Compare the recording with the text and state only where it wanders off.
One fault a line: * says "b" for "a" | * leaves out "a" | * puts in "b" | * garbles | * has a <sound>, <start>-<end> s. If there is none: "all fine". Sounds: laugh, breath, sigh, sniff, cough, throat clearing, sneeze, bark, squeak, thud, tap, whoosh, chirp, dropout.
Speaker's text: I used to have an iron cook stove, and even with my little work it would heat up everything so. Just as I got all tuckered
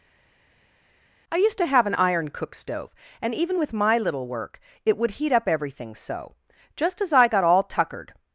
all fine